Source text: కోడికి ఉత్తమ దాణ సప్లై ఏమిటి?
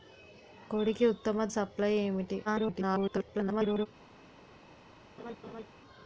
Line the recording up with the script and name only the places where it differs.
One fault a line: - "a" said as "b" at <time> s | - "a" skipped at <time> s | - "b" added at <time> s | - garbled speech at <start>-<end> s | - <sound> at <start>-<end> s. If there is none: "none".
- "దాణ" skipped at 1.4 s
- garbled speech at 2.4-3.9 s
- laugh at 5.2-5.7 s